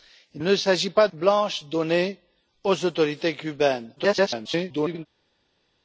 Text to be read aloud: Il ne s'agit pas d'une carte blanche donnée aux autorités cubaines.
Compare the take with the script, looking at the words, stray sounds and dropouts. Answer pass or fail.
fail